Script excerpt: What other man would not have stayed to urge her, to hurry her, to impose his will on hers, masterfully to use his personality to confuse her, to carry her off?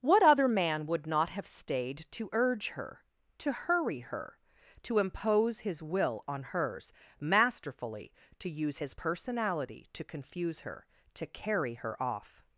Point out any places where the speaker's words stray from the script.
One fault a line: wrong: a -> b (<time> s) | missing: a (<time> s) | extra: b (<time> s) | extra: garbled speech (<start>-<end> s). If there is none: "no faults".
no faults